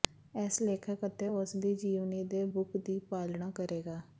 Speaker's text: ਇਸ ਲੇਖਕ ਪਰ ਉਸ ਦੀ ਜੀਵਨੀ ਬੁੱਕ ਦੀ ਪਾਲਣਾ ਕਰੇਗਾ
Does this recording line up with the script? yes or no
no